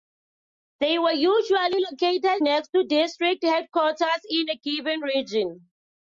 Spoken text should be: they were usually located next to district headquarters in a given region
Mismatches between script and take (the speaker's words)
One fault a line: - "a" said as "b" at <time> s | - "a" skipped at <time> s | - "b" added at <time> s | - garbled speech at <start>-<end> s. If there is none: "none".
none